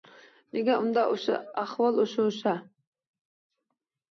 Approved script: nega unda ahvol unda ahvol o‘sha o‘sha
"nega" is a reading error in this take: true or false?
false